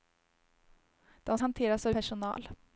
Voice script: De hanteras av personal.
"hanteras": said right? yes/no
yes